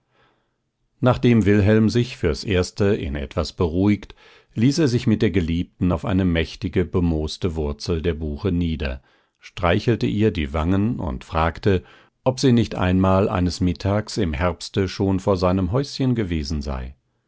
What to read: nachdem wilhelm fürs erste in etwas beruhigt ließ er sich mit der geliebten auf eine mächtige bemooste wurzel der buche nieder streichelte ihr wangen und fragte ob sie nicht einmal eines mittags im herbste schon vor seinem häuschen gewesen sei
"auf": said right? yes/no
yes